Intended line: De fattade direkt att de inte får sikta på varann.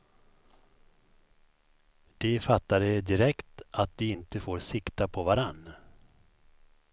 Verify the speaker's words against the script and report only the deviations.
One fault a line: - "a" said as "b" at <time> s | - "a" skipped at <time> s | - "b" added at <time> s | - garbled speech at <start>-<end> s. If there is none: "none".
none